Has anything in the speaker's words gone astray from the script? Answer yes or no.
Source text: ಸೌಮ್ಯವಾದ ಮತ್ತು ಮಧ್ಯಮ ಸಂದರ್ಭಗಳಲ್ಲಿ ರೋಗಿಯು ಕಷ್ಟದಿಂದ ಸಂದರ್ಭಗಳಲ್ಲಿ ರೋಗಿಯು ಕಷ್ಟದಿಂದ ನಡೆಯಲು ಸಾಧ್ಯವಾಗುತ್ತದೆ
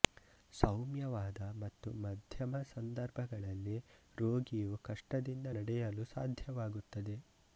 yes